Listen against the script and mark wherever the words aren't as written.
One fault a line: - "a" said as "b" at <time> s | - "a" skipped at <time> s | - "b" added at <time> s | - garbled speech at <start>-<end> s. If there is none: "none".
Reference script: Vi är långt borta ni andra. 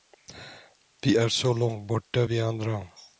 - "så" added at 1.3 s
- "ni" said as "vi" at 2.2 s